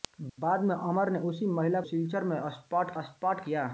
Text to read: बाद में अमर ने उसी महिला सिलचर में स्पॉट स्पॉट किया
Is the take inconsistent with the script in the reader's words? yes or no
no